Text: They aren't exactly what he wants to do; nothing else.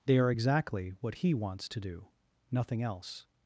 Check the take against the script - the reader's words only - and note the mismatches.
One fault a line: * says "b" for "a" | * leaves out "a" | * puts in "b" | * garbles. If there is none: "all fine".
* says "are" for "aren't"